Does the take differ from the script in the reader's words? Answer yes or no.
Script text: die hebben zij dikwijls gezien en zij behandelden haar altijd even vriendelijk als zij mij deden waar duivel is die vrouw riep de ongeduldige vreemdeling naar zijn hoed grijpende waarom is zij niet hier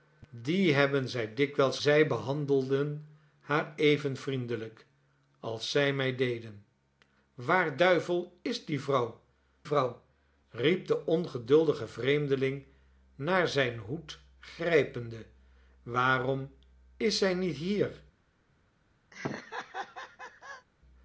yes